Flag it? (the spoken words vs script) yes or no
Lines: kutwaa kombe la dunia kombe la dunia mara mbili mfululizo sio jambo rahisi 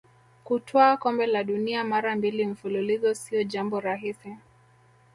yes